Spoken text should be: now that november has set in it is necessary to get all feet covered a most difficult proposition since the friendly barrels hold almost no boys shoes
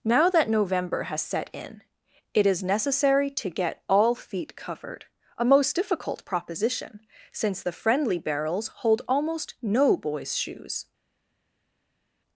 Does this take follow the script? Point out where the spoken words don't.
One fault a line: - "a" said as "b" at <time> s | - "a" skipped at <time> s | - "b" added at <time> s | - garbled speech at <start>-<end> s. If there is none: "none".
none